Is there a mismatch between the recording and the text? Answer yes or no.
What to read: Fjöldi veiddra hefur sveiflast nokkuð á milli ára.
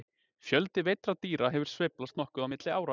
yes